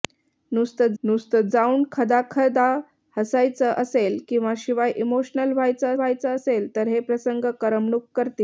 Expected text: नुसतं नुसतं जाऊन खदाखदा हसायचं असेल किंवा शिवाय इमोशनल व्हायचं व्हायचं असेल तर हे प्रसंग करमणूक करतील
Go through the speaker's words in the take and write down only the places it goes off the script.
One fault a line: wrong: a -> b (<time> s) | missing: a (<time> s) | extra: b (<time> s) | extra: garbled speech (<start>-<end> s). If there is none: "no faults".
no faults